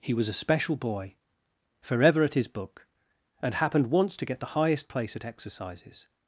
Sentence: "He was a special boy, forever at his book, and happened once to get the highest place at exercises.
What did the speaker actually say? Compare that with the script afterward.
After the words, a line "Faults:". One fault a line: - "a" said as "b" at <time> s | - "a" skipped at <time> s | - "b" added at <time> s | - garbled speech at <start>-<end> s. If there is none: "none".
"He was a special boy, forever at his book, and happened once to get the highest place at exercises.
Faults:
none